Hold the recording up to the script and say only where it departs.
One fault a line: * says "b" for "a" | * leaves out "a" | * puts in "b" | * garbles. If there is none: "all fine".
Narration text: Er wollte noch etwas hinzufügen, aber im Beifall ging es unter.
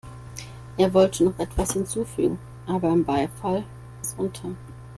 * leaves out "ging"